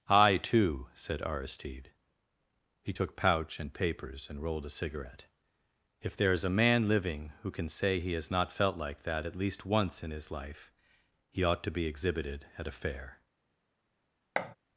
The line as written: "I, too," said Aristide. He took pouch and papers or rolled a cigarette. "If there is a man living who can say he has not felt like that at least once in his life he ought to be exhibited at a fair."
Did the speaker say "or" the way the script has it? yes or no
no